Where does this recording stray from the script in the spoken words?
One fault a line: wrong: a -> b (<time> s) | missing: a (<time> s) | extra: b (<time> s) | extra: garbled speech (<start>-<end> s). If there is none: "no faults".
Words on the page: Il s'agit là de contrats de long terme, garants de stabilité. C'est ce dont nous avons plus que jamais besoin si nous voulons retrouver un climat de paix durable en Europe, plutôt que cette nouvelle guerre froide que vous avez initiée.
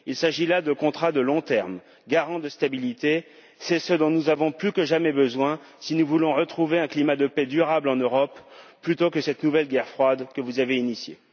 no faults